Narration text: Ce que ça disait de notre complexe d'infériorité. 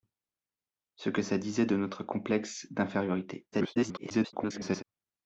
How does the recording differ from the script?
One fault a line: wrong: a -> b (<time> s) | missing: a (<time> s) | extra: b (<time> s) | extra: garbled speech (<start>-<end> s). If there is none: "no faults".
extra: garbled speech (3.5-4.8 s)